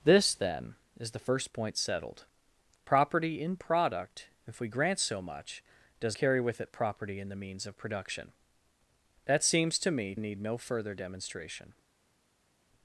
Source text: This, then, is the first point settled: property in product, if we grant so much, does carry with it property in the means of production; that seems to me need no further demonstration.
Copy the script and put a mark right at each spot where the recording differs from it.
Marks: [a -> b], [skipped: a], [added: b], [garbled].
This, then, is the first point settled: property in product, if we grant so much, does carry with it property in the means of production; that seems to me need no further demonstration.